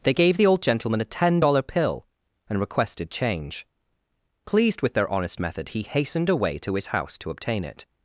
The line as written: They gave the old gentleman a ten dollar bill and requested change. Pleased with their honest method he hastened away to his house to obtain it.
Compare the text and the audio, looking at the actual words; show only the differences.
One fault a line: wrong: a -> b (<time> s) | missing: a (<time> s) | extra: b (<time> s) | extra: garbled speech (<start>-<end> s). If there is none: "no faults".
wrong: bill -> pill (1.6 s)